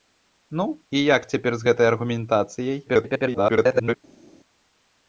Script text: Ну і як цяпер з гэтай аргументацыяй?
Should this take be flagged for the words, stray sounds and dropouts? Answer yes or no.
yes